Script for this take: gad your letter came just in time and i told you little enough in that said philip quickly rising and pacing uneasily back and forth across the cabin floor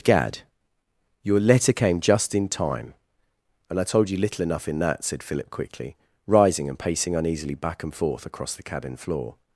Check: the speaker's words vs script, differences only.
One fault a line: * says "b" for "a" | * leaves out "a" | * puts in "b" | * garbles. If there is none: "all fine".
all fine